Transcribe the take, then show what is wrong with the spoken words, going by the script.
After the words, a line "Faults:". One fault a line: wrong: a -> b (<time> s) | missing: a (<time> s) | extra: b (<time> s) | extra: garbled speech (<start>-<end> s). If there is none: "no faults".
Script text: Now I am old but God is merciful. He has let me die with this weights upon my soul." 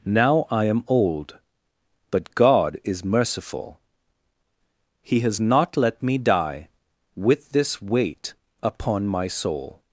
Now I am old but God is merciful. He has not let me die with this weight upon my soul."
Faults:
extra: not (5.4 s)
wrong: weights -> weight (7.8 s)